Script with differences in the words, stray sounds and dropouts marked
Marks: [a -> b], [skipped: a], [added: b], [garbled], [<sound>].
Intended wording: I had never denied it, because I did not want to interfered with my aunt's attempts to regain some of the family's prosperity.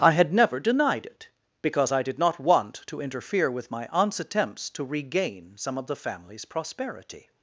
I had never denied it, because I did not want to [interfered -> interfere] with my aunt's attempts to regain some of the family's prosperity.